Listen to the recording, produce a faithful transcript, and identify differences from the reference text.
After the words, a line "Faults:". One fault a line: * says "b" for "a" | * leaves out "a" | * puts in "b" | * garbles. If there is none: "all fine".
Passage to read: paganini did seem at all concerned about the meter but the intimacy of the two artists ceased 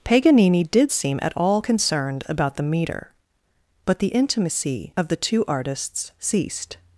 paganini did seem at all concerned about the meter but the intimacy of the two artists ceased
Faults:
all fine